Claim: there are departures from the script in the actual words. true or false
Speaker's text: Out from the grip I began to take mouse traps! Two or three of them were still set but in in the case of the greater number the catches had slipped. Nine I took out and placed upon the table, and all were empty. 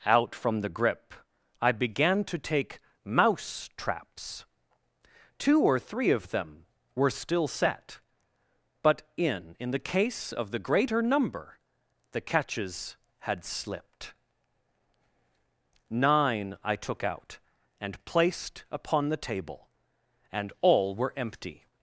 false